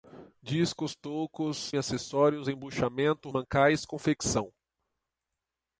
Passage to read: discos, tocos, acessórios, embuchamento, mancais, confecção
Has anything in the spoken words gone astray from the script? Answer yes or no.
no